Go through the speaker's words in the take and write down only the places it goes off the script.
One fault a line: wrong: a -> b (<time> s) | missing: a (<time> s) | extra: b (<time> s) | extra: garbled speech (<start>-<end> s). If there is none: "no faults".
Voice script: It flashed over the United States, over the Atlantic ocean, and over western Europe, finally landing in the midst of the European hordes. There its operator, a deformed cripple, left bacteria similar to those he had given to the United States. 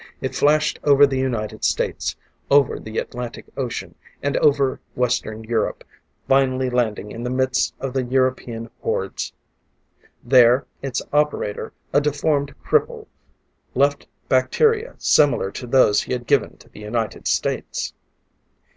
no faults